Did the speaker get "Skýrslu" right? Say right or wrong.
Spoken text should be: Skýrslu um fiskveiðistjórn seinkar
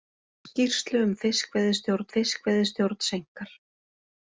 right